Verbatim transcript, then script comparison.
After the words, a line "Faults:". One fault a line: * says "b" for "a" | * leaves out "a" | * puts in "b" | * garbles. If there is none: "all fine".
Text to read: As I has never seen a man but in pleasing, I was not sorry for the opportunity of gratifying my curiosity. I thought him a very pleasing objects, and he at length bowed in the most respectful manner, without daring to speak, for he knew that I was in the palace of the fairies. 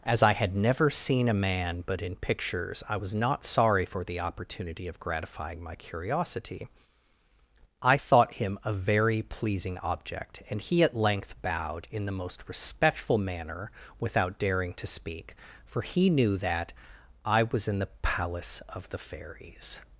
As I had never seen a man but in pictures, I was not sorry for the opportunity of gratifying my curiosity. I thought him a very pleasing object, and he at length bowed in the most respectful manner, without daring to speak, for he knew that I was in the palace of the fairies.
Faults:
* says "had" for "has"
* says "pictures" for "pleasing"
* says "object" for "objects"